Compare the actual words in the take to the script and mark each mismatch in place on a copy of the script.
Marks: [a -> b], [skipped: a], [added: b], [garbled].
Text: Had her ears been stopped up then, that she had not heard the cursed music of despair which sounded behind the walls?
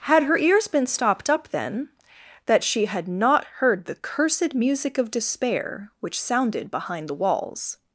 Had her ears been stopped up then, that she had not heard the cursed music of despair which sounded behind the walls?